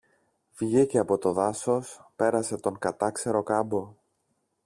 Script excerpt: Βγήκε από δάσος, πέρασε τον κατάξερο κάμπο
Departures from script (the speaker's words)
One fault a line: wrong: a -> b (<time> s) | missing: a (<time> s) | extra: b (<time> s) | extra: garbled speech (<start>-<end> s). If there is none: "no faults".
extra: το (1.2 s)